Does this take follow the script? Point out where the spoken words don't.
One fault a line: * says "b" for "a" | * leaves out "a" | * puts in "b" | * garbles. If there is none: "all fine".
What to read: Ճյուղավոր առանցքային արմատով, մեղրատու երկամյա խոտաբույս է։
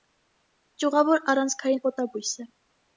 * leaves out "արմատով մեղրատու երկամյա"